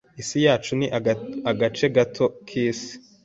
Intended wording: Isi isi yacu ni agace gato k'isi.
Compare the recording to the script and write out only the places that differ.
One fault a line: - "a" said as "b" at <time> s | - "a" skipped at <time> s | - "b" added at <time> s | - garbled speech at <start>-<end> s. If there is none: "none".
- "isi" skipped at 0.4 s